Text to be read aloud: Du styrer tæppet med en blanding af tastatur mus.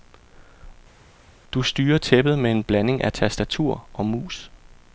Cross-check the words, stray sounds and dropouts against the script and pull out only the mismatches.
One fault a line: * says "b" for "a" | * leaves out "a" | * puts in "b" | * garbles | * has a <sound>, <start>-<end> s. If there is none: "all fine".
* puts in "og"